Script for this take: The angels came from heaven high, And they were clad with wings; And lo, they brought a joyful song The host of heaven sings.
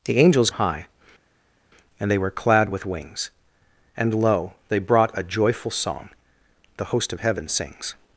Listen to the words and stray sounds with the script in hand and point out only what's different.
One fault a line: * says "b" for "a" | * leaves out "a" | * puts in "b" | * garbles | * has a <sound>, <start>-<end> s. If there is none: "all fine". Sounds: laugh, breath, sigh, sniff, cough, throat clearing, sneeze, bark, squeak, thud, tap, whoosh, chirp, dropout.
* leaves out "came from heaven"